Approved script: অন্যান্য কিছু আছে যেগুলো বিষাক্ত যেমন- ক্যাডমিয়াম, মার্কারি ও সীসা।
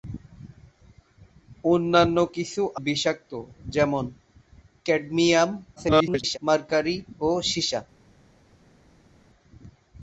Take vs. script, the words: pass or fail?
fail